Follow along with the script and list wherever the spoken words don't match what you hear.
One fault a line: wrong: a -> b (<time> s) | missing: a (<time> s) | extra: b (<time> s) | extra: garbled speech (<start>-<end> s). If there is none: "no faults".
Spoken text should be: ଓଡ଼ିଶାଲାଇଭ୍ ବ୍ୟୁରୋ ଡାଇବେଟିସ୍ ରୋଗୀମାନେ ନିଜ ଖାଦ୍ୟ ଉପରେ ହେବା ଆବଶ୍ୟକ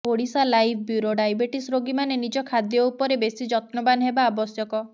extra: ବେଶୀ ଯତ୍ନବାନ (3.2 s)